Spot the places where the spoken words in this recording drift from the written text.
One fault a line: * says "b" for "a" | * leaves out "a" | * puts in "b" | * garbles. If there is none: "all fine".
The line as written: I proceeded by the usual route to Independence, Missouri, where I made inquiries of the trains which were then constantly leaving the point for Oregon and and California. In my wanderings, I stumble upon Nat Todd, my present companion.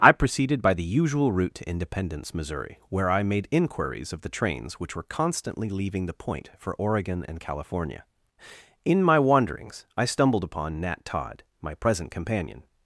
* leaves out "then"
* leaves out "and"
* says "stumbled" for "stumble"